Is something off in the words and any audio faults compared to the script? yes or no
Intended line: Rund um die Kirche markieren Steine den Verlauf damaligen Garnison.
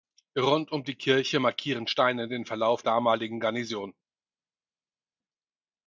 no